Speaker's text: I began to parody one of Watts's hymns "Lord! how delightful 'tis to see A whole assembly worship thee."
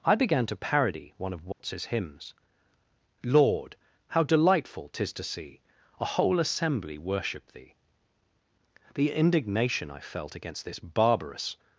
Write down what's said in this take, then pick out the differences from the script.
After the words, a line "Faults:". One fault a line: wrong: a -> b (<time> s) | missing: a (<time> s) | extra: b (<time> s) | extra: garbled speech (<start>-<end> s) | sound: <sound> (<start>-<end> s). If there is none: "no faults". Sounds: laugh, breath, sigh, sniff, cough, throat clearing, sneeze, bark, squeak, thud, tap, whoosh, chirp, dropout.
I began to parody one of Watts's hymns "Lord! how delightful 'tis to see A whole assembly worship thee." The indignation I felt against this barbarous
Faults:
sound: dropout (1.5-1.6 s)
extra: The indignation I felt against this barbarous (8.9 s)